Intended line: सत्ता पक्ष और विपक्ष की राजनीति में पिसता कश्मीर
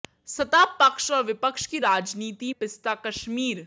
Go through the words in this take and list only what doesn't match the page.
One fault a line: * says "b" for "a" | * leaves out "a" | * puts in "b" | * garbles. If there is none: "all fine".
* leaves out "में"